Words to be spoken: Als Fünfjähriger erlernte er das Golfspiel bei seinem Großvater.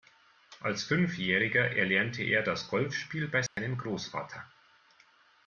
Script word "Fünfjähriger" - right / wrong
right